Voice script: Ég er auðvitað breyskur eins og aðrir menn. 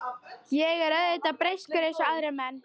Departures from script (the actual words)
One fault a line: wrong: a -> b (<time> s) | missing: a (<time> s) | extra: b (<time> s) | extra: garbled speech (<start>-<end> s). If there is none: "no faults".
no faults